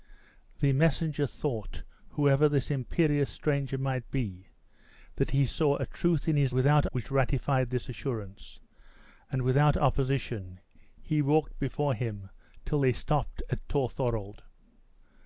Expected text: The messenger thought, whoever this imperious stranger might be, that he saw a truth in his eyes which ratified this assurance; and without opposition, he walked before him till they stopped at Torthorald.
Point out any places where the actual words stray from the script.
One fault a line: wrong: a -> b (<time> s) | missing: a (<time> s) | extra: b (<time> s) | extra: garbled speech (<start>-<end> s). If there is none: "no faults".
wrong: eyes -> without (6.5 s)